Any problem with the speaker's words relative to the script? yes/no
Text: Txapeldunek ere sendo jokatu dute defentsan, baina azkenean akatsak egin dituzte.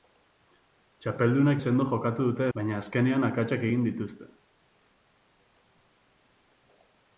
yes